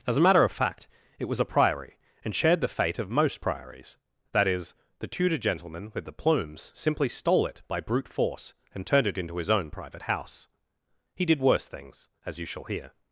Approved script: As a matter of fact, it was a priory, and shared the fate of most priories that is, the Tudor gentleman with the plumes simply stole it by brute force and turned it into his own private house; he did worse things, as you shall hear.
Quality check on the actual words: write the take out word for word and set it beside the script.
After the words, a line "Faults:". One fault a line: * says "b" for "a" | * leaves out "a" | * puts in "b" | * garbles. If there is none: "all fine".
As a matter of fact, it was a priory, and shared the fate of most priories that is, the Tudor gentleman with the plumes simply stole it by brute force and turned it into his own private house; he did worse things, as you shall hear.
Faults:
all fine